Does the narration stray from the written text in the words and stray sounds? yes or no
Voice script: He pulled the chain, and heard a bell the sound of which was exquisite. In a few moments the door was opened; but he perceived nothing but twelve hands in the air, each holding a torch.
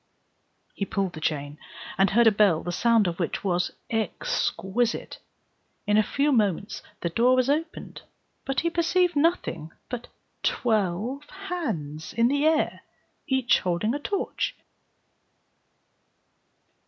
no